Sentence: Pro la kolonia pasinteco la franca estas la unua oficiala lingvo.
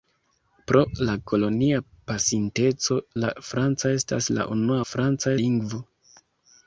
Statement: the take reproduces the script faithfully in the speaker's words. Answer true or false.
false